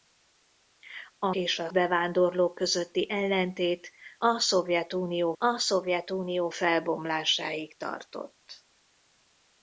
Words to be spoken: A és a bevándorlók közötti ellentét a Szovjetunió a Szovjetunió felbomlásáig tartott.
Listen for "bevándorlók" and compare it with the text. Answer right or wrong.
right